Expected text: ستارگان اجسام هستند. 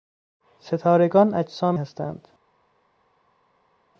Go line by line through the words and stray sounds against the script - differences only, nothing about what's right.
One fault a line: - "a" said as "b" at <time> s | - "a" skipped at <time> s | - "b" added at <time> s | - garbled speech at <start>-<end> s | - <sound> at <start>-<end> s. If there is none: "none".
none